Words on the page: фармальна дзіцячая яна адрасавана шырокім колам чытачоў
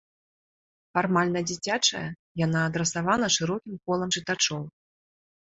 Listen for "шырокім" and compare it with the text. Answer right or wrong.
right